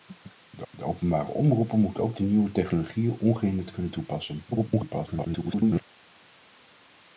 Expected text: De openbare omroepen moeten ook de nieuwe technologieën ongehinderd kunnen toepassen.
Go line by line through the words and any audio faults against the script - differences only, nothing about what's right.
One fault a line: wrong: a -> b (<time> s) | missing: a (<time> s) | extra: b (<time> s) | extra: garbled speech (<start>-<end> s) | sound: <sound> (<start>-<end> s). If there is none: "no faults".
extra: de (0.7 s)
extra: garbled speech (4.5-5.8 s)